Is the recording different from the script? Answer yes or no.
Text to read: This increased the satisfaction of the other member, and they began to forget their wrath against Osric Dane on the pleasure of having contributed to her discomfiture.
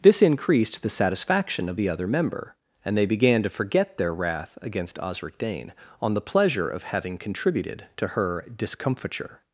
no